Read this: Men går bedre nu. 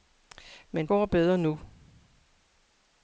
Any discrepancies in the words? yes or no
no